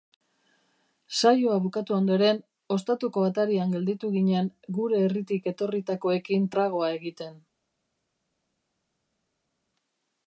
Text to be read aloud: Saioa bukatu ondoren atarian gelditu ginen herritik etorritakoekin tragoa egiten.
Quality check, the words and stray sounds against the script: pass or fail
fail